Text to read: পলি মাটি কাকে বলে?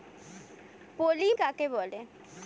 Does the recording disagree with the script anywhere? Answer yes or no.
yes